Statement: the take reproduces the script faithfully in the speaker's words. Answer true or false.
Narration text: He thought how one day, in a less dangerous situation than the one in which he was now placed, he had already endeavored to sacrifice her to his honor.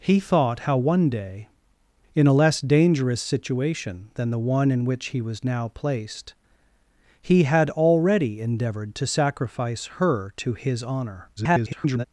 false